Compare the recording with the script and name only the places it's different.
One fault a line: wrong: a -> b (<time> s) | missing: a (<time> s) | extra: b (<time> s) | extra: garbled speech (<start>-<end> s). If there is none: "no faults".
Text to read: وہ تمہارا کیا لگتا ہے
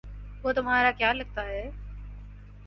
no faults